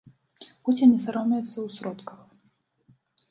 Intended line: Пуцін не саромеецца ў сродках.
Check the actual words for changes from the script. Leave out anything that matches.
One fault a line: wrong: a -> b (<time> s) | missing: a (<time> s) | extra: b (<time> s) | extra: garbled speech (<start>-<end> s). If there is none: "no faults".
no faults